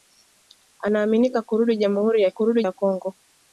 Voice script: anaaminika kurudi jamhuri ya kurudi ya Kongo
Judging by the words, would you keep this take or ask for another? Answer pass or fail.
pass